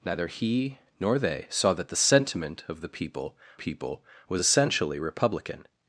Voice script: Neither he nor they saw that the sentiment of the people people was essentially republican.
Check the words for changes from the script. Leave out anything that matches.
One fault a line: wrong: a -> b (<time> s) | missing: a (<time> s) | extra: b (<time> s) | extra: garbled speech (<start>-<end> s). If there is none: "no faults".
no faults